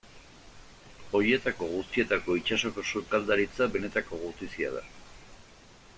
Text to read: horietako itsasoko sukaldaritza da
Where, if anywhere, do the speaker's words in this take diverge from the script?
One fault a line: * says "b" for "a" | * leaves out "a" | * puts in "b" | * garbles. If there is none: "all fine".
* puts in "guztietako"
* puts in "benetako gutizia"